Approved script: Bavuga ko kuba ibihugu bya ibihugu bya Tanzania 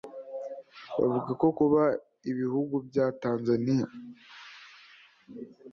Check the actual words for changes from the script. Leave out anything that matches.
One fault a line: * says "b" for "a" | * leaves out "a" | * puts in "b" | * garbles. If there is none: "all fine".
* leaves out "ibihugu bya"